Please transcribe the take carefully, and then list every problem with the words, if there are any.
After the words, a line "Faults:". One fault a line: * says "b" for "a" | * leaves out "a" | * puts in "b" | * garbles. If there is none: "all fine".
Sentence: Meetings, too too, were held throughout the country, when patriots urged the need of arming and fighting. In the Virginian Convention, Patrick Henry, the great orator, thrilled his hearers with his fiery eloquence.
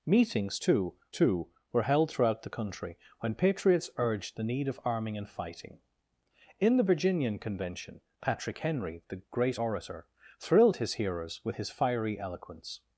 Meetings, too too, were held throughout the country, when patriots urged the need of arming and fighting. In the Virginian Convention, Patrick Henry, the great orator, thrilled his hearers with his fiery eloquence.
Faults:
all fine